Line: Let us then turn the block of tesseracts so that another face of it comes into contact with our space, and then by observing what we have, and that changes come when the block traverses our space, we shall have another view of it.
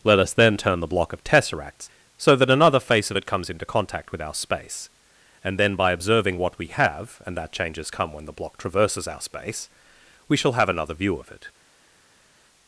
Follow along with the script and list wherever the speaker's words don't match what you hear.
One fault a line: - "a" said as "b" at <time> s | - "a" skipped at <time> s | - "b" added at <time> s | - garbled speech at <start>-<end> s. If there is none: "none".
none